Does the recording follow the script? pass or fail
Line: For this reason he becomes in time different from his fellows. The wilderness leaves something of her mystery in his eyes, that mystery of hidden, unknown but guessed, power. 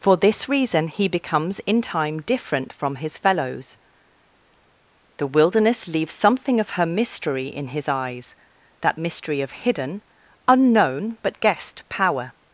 pass